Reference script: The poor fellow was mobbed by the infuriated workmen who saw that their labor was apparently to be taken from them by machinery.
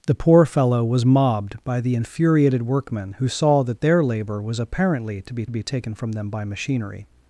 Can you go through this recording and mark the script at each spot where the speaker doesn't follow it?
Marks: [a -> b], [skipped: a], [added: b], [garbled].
The poor fellow was mobbed by the infuriated workmen who saw that their labor was apparently to be [added: be] taken from them by machinery.